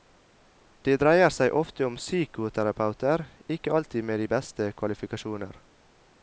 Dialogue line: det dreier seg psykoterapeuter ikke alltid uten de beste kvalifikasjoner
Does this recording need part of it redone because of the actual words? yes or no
yes